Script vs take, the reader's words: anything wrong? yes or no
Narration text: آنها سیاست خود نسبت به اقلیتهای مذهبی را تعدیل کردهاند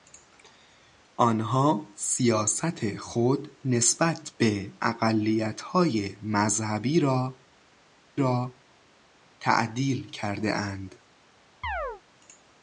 yes